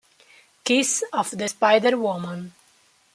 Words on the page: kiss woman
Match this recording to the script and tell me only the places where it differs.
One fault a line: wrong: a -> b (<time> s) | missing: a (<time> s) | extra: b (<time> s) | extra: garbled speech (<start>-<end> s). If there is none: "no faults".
extra: of the spider (1.1 s)